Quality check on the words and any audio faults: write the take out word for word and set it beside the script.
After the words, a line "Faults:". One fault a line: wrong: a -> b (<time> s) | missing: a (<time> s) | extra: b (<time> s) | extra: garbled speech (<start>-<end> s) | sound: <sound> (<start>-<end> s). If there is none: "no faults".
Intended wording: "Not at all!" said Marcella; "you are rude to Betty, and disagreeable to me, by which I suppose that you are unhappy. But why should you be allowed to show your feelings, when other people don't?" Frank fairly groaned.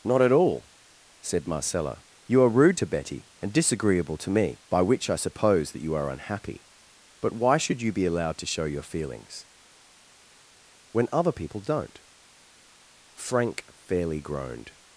"Not at all!" said Marcella; "you are rude to Betty, and disagreeable to me, by which I suppose that you are unhappy. But why should you be allowed to show your feelings, when other people don't?" Frank fairly groaned.
Faults:
no faults